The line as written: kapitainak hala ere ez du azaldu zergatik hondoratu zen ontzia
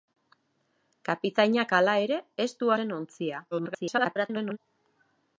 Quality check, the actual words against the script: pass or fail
fail